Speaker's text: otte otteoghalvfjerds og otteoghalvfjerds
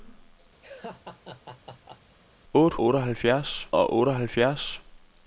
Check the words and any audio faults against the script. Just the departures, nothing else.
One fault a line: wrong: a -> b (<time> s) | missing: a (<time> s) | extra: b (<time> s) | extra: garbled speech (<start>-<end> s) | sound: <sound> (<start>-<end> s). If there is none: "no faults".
sound: laugh (0.6-2.2 s)